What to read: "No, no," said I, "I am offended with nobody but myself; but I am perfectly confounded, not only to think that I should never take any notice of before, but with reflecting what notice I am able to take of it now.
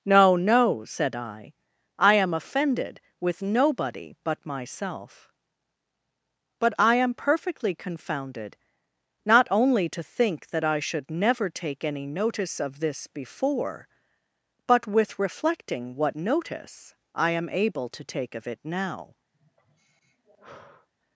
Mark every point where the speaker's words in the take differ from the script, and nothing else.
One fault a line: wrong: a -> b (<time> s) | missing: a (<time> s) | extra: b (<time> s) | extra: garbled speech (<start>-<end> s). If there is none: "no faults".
extra: this (12.8 s)